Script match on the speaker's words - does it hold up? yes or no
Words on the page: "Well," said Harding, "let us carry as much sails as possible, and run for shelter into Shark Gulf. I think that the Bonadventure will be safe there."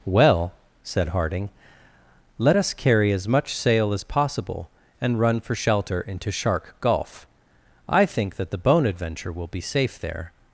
no